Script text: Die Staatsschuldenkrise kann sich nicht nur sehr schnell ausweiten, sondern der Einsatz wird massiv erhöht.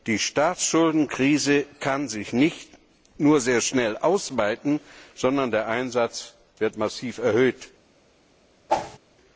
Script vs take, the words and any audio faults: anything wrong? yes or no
yes